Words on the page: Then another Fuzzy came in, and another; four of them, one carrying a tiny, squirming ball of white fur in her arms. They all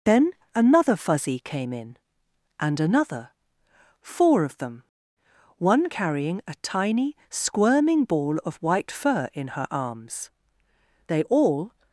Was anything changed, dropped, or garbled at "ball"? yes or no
no